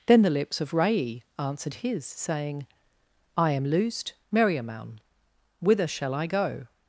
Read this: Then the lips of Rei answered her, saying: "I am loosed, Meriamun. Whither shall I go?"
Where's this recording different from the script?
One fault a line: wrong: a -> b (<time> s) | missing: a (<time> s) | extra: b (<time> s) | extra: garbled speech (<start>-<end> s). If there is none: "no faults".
wrong: her -> his (1.8 s)